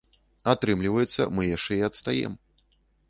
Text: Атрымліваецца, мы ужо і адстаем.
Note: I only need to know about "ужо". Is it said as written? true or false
false